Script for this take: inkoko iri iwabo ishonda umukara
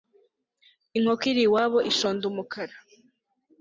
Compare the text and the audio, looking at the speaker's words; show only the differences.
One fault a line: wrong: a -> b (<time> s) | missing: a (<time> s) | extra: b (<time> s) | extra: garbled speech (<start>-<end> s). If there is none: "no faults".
no faults